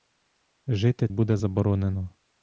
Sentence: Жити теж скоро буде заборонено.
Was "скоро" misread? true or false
true